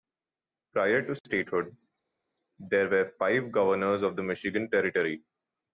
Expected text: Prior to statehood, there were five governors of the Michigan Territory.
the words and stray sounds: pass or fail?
pass